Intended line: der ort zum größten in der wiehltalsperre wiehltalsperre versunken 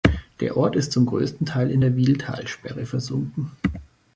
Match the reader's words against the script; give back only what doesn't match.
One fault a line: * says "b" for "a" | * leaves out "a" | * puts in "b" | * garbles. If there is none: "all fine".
* puts in "ist"
* puts in "teil"
* leaves out "wiehltalsperre"